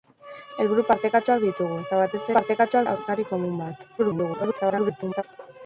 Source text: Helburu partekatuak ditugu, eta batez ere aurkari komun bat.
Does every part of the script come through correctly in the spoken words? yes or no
no